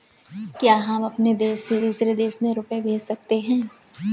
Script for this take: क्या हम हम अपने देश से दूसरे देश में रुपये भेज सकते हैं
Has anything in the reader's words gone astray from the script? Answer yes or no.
yes